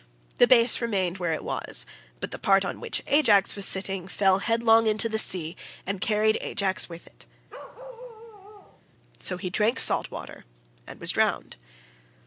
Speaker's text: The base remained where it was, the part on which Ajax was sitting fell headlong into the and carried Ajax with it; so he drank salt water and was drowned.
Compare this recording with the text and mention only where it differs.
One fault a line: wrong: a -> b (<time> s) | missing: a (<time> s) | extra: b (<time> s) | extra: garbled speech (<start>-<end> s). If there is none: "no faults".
extra: but (2.2 s)
extra: sea (5.2 s)